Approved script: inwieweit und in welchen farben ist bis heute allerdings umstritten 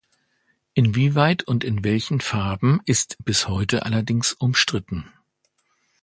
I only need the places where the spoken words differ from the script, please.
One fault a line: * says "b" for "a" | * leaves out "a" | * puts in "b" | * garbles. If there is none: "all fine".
all fine